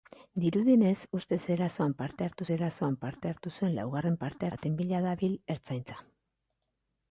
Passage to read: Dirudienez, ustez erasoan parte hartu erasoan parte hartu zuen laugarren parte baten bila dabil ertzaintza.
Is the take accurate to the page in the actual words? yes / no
yes